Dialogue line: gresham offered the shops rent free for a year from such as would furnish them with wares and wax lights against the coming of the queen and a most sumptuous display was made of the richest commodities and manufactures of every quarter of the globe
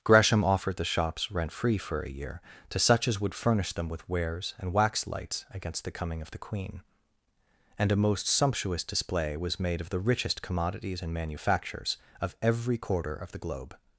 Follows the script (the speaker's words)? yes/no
no